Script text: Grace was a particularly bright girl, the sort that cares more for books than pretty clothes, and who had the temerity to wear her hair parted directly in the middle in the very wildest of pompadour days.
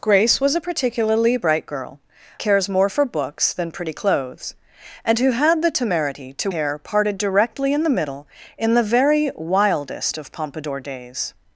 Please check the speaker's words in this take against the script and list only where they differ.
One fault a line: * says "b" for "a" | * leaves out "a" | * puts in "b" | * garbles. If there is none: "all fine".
* leaves out "the sort that"
* leaves out "wear her"